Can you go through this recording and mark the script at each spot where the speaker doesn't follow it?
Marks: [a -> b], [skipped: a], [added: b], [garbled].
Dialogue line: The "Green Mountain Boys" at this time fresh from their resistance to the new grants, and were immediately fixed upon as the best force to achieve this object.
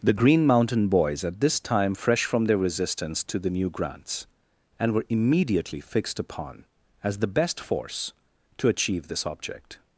The "Green Mountain Boys" at this time fresh from their resistance to the new grants, and were immediately fixed upon as the best force to achieve this object.